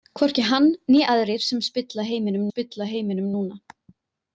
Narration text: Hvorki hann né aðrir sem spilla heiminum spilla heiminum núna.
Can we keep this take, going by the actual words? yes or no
yes